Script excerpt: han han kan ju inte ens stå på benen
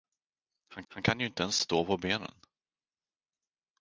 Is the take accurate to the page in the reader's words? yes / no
yes